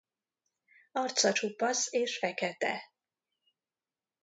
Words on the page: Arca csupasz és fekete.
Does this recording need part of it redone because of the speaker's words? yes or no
no